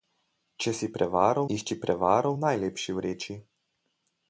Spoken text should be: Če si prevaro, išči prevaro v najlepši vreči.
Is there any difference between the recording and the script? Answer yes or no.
no